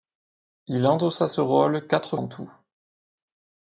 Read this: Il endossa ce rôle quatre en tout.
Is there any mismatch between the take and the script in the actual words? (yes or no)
no